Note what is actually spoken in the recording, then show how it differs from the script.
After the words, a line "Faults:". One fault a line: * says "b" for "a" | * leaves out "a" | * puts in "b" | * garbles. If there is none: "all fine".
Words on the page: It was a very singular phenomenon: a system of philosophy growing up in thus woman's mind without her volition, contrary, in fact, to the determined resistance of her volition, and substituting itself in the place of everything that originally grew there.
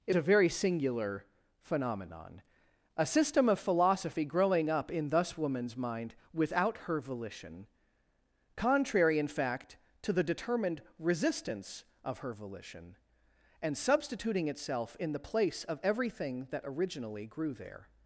It a very singular phenomenon: a system of philosophy growing up in thus woman's mind without her volition, contrary, in fact, to the determined resistance of her volition, and substituting itself in the place of everything that originally grew there.
Faults:
* leaves out "was"